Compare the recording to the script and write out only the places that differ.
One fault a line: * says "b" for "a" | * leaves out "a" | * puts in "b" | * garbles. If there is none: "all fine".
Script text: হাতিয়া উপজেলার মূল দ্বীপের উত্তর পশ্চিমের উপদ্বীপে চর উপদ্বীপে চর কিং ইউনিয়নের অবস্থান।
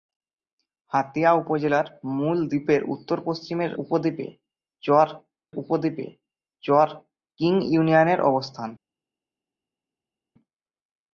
all fine